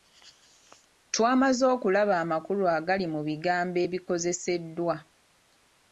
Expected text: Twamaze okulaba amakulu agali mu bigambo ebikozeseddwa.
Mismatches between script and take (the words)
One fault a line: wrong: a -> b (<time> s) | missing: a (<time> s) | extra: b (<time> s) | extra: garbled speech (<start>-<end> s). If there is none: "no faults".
no faults